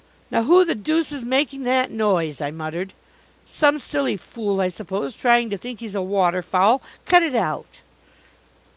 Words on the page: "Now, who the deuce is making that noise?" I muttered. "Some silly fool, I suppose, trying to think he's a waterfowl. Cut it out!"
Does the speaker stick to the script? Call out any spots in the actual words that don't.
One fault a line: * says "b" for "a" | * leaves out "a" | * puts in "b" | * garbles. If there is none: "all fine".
all fine